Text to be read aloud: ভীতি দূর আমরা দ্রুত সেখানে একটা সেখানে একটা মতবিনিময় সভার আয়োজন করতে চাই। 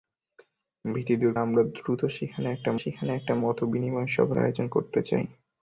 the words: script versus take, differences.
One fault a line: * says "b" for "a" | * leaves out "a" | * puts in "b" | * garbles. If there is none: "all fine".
all fine